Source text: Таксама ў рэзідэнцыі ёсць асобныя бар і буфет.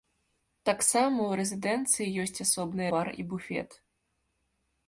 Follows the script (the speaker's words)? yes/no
yes